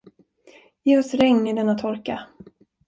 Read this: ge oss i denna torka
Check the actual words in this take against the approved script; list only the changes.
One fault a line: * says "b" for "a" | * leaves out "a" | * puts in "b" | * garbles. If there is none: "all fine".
* puts in "regn"